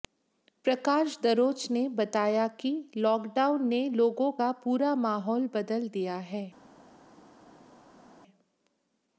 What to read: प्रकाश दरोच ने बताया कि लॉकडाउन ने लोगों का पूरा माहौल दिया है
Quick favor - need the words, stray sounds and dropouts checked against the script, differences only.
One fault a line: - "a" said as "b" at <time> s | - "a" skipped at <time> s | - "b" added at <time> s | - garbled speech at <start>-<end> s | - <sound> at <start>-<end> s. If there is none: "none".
- "बदल" added at 5.5 s